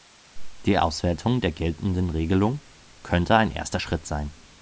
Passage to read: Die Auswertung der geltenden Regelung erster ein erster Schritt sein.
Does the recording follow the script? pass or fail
fail